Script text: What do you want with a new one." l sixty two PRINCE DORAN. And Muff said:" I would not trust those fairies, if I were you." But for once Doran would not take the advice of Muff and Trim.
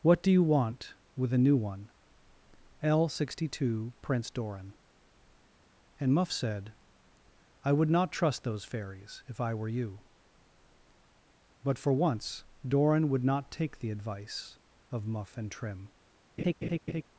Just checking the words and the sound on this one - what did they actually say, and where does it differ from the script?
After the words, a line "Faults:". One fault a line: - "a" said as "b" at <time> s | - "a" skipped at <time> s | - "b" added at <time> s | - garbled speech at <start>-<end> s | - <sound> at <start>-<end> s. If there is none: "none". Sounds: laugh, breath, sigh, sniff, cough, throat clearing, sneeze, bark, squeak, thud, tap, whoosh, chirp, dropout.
What do you want with a new one." l sixty two PRINCE DORAN. And Muff said:" I would not trust those fairies, if I were you." But for once Doran would not take the advice of Muff and Trim.
Faults:
- laugh at 16.4-17.0 s